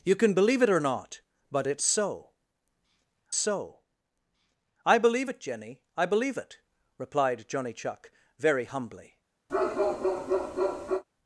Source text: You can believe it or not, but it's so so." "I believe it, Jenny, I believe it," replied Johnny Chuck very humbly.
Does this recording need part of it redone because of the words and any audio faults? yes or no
yes